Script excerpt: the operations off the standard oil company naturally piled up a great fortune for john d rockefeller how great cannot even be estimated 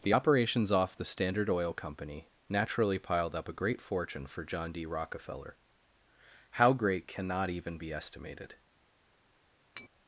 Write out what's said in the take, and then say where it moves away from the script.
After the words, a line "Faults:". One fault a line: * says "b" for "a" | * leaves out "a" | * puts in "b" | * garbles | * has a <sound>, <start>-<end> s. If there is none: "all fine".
the operations off the standard oil company naturally piled up a great fortune for john d rockefeller how great cannot even be estimated
Faults:
* has a tap, 9.8-9.9 s